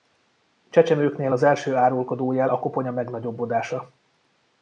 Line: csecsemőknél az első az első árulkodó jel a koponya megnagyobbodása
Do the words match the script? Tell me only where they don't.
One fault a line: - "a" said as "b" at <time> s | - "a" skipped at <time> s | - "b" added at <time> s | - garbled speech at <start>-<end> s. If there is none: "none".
- "az első" skipped at 1.7 s